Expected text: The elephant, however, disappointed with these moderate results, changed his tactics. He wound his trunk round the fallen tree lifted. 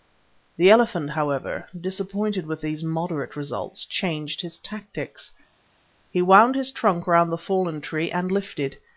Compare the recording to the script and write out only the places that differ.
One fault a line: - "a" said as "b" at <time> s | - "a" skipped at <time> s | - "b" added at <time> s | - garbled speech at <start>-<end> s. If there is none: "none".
- "and" added at 8.1 s